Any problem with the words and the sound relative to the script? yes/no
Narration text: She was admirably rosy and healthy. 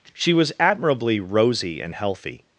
no